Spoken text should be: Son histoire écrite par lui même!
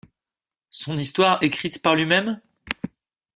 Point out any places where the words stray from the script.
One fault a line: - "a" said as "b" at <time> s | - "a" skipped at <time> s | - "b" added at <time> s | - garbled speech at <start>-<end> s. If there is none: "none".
none